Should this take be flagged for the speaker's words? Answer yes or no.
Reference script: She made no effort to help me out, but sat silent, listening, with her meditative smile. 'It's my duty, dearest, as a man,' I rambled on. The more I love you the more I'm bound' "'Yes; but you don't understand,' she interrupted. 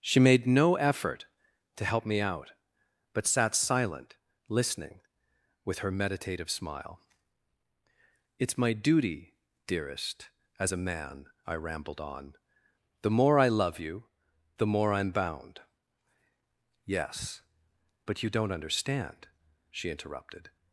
no